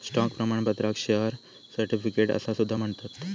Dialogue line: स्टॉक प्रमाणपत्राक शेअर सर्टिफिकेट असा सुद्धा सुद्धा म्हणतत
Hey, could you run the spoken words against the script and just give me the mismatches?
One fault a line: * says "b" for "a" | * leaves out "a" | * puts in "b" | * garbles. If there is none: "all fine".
* leaves out "सुद्धा"